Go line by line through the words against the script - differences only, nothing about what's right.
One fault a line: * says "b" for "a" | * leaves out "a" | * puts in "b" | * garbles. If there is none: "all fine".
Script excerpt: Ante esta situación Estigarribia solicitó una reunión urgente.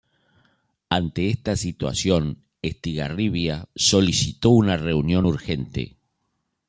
all fine